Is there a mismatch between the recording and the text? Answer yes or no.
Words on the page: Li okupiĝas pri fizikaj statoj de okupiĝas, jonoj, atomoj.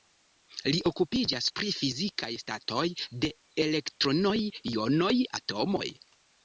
yes